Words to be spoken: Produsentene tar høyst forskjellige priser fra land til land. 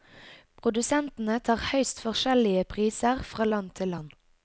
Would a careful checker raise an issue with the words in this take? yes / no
no